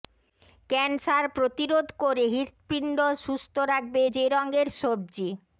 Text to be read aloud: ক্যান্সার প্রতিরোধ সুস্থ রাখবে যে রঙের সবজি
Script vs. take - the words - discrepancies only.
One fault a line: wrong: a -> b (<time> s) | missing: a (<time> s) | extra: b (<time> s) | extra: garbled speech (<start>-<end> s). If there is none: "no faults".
extra: করে হৃৎপিণ্ড (2.0 s)